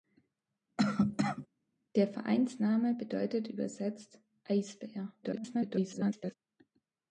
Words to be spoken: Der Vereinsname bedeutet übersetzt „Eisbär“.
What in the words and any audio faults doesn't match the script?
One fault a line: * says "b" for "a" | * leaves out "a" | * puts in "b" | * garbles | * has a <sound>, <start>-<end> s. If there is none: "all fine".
* has a cough, 0.8-1.5 s
* garbles